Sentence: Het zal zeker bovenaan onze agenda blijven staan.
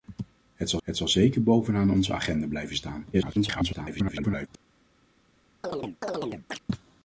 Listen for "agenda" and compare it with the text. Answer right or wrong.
right